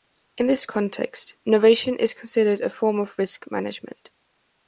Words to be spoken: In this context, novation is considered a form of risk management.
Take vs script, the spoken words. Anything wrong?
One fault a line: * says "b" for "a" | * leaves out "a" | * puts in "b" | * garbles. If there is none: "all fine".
all fine